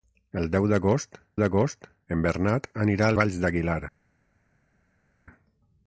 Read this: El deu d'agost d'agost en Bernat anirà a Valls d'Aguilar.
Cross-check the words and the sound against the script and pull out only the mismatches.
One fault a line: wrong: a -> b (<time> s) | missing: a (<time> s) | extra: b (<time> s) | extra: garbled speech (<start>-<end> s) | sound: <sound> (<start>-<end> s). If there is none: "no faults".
no faults